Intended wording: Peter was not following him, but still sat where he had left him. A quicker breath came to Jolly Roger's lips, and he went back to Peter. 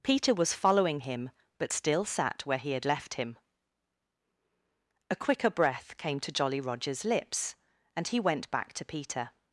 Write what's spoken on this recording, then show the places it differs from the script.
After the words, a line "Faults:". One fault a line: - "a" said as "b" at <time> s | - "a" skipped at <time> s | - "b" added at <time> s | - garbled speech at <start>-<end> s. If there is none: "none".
Peter was following him, but still sat where he had left him. A quicker breath came to Jolly Roger's lips, and he went back to Peter.
Faults:
- "not" skipped at 0.5 s